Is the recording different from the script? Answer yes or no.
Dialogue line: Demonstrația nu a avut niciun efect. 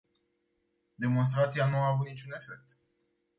no